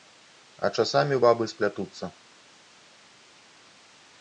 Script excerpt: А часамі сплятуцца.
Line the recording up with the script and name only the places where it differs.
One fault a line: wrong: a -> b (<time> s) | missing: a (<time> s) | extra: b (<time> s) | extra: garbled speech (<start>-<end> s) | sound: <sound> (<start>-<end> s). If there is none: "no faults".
extra: бабы (1.3 s)